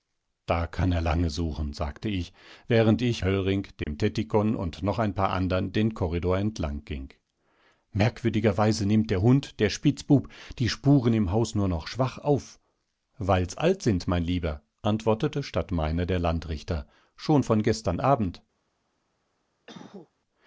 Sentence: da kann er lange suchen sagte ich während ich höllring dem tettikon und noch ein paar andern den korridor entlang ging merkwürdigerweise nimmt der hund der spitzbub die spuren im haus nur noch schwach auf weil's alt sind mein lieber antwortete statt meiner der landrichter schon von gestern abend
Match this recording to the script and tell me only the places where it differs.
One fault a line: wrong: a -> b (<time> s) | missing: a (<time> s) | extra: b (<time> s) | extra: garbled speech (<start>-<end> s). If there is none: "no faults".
no faults